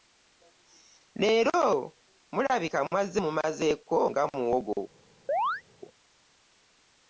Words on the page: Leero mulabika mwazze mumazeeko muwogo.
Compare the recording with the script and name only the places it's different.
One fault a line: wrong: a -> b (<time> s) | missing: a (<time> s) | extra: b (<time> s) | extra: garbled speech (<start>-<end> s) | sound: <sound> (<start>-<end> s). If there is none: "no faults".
extra: nga (4.1 s)
sound: chirp (5.3-5.6 s)